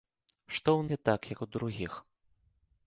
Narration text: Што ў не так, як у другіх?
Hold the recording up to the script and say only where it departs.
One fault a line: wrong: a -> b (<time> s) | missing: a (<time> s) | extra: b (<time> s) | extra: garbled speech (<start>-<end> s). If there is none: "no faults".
no faults